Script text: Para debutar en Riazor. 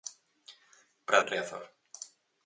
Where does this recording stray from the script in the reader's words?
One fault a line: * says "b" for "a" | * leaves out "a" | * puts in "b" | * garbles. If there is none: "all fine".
* leaves out "debutar"